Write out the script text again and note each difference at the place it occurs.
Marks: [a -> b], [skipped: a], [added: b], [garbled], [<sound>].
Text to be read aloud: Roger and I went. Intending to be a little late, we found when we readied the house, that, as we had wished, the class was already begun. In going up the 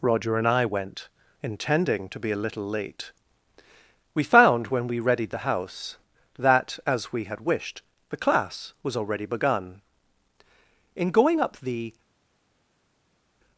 Roger and I went. Intending to be a little late, we found when we readied the house, that, as we had wished, the class was already begun. In going up the